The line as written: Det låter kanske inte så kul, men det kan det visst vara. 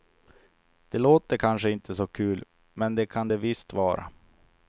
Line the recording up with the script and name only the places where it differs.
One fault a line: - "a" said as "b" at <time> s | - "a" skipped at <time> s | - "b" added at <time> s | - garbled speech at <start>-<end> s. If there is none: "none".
none